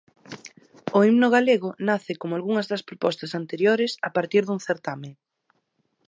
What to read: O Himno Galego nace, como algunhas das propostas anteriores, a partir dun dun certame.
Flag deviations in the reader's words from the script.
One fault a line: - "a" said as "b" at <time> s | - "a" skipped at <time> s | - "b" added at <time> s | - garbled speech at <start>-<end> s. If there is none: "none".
- "dun" skipped at 4.6 s